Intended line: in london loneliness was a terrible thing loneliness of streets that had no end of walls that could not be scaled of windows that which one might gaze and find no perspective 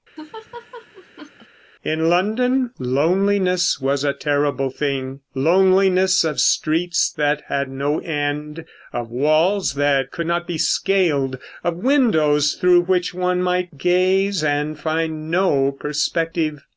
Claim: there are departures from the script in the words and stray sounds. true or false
true